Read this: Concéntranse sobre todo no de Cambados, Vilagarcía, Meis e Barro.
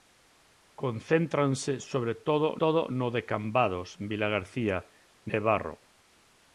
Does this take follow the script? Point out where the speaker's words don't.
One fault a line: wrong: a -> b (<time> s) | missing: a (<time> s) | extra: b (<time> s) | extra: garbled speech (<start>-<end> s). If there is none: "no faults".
extra: todo (2.6 s)
missing: Meis (4.8 s)